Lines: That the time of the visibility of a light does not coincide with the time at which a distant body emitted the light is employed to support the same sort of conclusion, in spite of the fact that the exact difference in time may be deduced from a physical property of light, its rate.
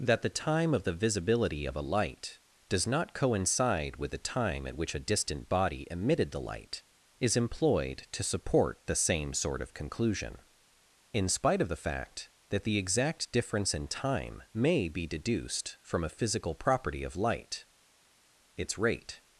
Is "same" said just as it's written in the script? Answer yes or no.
yes